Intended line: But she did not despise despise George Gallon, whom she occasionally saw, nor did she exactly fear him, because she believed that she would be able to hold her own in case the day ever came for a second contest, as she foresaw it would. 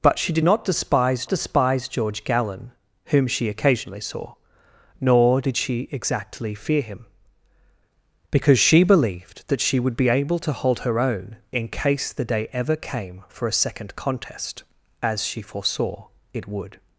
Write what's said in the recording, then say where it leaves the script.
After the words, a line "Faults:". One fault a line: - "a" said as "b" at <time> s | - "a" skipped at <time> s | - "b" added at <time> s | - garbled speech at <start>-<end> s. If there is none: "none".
But she did not despise despise George Gallon, whom she occasionally saw, nor did she exactly fear him, because she believed that she would be able to hold her own in case the day ever came for a second contest, as she foresaw it would.
Faults:
none